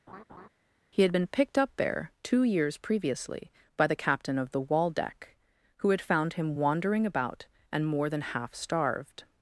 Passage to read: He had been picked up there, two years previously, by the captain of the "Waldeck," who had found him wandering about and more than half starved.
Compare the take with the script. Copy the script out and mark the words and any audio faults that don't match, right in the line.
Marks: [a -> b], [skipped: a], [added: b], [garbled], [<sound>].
[laugh] He had been picked up there, two years previously, by the captain of the "Waldeck," who had found him wandering about and more than half starved.